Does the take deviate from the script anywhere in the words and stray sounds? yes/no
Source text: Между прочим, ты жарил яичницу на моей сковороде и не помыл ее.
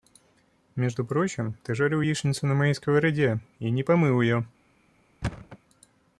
yes